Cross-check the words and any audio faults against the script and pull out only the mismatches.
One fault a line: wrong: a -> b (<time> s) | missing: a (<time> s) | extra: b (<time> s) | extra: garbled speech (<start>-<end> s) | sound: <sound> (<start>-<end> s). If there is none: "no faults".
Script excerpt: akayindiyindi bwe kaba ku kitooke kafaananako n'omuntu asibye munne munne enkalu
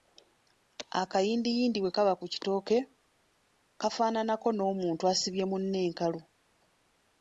missing: munne (5.8 s)